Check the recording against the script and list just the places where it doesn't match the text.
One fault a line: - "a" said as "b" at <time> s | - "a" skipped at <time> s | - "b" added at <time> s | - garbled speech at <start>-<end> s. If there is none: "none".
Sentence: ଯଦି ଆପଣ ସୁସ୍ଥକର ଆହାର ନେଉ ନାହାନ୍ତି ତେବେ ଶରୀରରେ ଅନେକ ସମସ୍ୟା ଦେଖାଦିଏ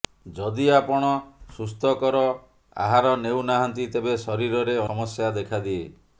- "ଅନେକ" skipped at 4.8 s